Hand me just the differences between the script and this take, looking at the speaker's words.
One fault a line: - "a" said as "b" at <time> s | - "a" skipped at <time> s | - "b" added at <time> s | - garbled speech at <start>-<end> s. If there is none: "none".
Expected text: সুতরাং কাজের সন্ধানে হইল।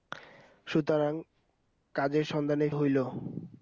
none